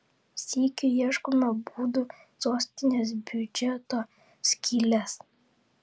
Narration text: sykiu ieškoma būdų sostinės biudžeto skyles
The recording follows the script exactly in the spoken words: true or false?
true